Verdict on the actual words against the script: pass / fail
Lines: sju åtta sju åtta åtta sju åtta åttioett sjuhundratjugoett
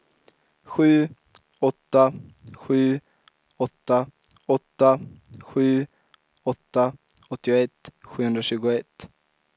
pass